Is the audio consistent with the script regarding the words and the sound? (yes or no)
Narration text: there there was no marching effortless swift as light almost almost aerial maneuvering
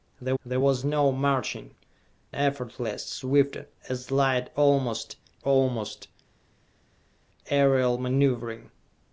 yes